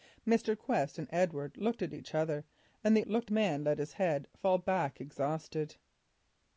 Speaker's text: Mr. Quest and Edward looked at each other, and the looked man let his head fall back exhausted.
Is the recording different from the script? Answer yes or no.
no